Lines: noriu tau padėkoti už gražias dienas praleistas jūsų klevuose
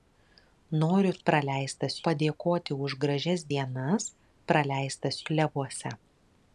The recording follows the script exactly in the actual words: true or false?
false